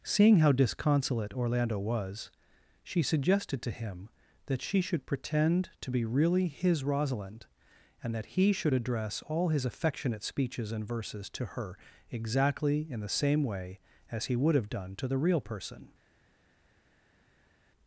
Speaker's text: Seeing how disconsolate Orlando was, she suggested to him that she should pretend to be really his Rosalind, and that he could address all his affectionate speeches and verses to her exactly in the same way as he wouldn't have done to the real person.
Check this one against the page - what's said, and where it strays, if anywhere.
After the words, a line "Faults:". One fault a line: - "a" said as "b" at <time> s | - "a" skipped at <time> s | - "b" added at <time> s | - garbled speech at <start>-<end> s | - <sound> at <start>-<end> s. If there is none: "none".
Seeing how disconsolate Orlando was, she suggested to him that she should pretend to be really his Rosalind, and that he should address all his affectionate speeches and verses to her exactly in the same way as he would have done to the real person.
Faults:
- "could" said as "should" at 8.5 s
- "wouldn't" said as "would" at 14.4 s